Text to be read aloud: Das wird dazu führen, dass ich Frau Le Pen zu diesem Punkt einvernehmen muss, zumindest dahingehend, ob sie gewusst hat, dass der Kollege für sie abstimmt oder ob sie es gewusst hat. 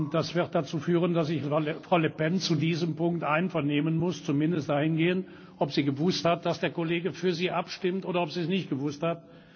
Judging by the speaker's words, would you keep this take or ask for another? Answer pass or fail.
fail